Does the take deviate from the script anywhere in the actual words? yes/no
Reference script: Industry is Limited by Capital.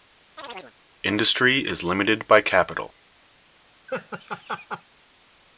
no